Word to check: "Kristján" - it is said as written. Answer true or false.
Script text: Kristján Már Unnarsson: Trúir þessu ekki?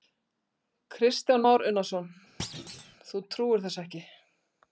true